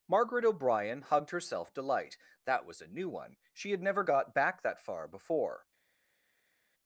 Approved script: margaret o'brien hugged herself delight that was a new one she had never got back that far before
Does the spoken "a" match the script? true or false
true